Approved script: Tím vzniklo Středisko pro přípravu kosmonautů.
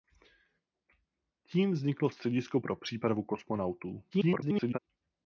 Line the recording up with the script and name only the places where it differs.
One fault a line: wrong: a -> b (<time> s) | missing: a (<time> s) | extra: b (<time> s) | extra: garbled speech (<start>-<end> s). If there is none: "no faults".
extra: garbled speech (4.1-4.8 s)